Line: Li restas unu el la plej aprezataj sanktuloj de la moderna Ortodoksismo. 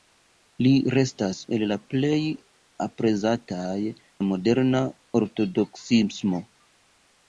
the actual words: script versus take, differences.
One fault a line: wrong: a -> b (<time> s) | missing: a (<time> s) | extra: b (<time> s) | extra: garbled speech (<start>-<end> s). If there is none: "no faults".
missing: unu (1.4 s)
missing: sanktuloj de (3.8 s)